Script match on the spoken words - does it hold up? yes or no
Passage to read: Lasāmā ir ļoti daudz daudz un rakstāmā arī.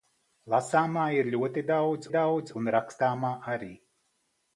yes